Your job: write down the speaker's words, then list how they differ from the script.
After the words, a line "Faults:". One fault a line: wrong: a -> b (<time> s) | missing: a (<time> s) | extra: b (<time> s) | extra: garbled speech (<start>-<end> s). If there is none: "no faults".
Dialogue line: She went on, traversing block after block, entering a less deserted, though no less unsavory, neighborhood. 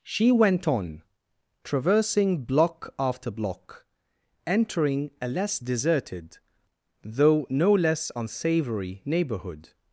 She went on, traversing block after block, entering a less deserted, though no less unsavory, neighborhood.
Faults:
no faults